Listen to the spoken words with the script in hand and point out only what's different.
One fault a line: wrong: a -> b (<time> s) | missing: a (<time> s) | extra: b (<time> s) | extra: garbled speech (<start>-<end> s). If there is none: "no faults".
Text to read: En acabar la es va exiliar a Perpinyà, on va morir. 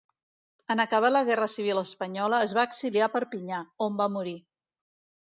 extra: guerra civil espanyola (1.3 s)